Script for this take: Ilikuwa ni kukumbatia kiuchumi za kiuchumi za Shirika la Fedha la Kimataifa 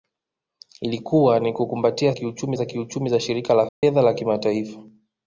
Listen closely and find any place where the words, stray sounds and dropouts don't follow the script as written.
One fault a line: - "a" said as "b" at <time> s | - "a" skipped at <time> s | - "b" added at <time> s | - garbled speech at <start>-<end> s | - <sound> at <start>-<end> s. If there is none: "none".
- dropout at 3.7-3.8 s